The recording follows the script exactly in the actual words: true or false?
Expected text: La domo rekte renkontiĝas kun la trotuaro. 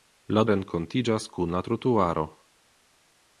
false